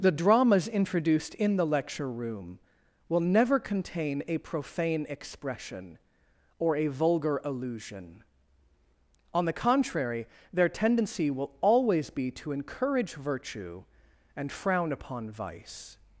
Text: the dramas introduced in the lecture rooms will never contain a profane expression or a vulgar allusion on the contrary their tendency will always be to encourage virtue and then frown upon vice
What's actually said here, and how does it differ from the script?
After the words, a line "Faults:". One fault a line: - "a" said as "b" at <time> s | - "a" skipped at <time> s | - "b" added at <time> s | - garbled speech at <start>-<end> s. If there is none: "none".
the dramas introduced in the lecture room will never contain a profane expression or a vulgar allusion on the contrary their tendency will always be to encourage virtue and frown upon vice
Faults:
- "rooms" said as "room" at 2.1 s
- "then" skipped at 14.5 s